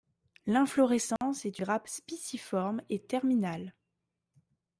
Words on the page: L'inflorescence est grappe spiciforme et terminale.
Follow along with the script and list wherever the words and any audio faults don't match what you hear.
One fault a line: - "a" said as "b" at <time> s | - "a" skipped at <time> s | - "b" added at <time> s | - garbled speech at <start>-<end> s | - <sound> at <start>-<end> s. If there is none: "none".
- dropout at 1.2-1.2 s